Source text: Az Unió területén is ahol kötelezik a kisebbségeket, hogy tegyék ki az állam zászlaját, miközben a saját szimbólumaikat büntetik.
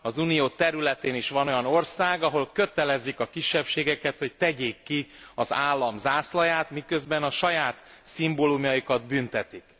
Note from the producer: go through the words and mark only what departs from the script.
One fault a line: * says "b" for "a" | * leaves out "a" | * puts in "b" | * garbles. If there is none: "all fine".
* puts in "van olyan ország"